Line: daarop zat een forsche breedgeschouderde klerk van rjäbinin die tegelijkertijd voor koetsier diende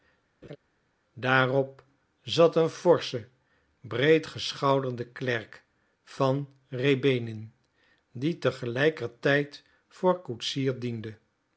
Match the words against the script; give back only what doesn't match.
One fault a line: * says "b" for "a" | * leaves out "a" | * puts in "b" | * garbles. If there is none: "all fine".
all fine